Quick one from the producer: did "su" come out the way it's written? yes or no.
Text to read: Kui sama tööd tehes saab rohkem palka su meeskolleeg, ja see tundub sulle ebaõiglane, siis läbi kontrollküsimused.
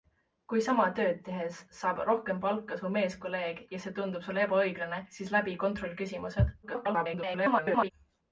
yes